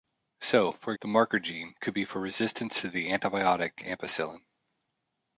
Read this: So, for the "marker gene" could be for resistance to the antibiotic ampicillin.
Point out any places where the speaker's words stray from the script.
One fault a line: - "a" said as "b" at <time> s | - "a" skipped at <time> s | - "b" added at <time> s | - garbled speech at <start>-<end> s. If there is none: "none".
none